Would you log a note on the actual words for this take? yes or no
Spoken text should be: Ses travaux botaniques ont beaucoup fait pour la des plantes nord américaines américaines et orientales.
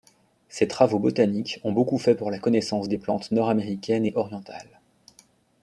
yes